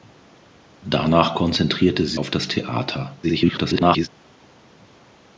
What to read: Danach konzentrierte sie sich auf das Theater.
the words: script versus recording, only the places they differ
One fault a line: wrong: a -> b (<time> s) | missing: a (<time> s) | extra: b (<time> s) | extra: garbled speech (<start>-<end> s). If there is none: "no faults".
missing: sich (2.2 s)
extra: garbled speech (3.2-4.1 s)